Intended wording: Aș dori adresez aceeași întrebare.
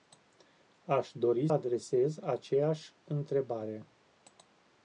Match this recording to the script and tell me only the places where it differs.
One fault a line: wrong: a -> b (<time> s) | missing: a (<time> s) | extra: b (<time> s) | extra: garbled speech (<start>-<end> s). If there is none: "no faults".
no faults